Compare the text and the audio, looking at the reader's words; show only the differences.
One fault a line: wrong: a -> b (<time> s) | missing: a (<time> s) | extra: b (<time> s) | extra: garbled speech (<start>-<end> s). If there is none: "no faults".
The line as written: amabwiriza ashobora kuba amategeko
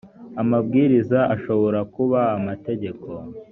no faults